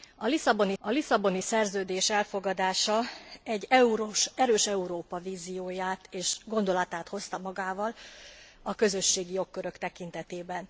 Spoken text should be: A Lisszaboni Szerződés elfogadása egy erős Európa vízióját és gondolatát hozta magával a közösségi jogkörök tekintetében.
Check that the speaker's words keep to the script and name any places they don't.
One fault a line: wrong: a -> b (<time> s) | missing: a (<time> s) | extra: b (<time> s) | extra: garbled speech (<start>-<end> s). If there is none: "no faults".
extra: a Lisszaboni (0.8 s)